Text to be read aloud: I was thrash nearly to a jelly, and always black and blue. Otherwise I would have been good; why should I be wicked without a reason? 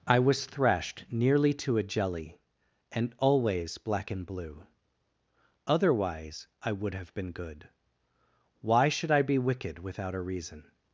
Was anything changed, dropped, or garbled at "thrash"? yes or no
yes